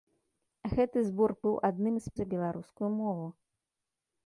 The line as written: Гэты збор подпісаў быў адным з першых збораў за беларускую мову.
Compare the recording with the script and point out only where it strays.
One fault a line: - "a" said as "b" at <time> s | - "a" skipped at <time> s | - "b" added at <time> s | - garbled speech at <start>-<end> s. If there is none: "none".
- "подпісаў" skipped at 1.3 s
- "першых збораў" skipped at 2.1 s